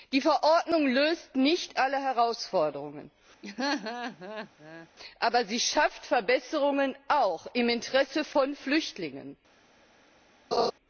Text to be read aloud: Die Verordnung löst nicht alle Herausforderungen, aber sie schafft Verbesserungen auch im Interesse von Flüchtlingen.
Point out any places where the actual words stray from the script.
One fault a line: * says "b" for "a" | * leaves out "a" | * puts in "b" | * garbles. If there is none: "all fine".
all fine